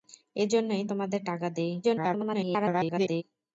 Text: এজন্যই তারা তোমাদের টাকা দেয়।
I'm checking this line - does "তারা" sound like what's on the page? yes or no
no